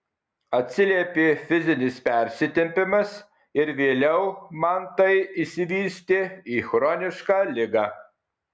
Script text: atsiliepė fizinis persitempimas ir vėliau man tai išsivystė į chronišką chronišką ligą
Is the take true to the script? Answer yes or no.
no